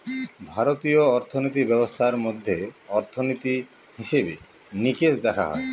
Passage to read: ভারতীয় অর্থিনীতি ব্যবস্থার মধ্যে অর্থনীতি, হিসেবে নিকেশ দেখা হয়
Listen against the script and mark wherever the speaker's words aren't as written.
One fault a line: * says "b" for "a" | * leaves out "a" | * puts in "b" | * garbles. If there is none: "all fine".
all fine